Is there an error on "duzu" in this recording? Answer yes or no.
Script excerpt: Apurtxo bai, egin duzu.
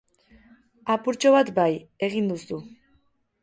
no